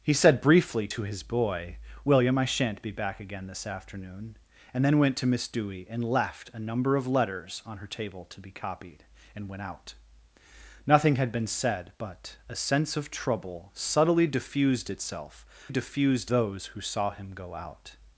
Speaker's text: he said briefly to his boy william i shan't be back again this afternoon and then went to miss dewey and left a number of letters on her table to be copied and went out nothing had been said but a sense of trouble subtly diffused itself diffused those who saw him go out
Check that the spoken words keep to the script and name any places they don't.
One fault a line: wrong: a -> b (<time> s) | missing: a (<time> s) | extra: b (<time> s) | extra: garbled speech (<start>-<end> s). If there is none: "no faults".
no faults